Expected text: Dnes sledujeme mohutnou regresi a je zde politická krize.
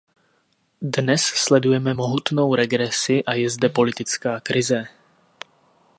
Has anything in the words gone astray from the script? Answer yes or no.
no